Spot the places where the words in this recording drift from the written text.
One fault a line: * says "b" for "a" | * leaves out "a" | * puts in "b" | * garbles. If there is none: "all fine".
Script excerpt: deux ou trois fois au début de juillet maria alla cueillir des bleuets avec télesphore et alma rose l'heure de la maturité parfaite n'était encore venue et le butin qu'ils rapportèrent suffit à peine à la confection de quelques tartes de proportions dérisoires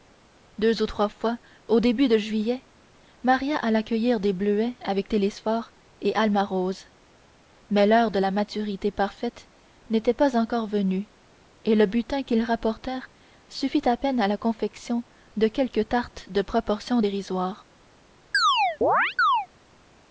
* puts in "mais"
* puts in "pas"